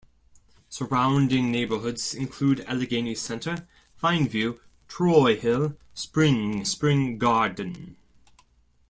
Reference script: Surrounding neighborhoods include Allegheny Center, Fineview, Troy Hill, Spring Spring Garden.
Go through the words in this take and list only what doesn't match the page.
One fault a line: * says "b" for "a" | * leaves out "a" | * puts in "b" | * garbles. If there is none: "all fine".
all fine